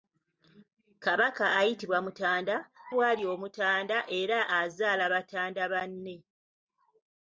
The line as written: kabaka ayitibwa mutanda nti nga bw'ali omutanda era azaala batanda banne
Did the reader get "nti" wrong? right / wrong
wrong